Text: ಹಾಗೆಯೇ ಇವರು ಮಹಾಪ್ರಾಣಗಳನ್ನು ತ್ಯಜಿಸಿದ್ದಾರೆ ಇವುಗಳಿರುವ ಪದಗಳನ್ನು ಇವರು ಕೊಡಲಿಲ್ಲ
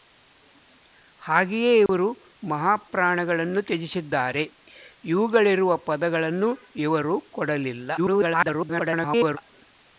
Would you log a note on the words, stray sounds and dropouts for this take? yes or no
yes